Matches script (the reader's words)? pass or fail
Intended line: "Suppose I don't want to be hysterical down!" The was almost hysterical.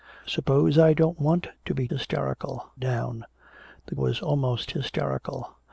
pass